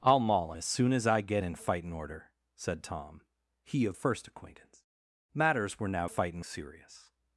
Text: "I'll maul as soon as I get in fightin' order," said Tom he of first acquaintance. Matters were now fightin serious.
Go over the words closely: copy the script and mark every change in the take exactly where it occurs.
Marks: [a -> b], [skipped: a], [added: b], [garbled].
"I'll maul as soon as I get in fightin' order," said Tom he of first acquaintance. Matters were now fightin serious.